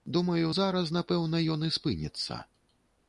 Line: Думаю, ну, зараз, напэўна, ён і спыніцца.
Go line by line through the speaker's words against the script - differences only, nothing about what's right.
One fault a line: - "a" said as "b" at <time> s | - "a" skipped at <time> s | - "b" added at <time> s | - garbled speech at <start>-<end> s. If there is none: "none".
- "ну" skipped at 0.5 s